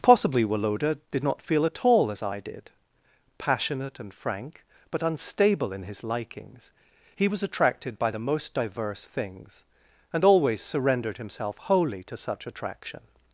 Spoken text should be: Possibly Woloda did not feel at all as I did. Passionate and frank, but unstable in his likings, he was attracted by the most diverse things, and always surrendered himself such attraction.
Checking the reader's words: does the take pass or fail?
fail